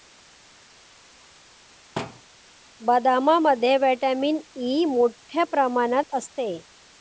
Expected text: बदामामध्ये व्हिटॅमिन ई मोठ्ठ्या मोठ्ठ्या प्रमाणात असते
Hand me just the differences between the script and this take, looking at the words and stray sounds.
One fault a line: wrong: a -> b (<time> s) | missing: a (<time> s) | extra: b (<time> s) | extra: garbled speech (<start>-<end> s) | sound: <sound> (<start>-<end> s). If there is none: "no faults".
sound: thud (2.0-2.2 s)
missing: मोठ्ठ्या (5.4 s)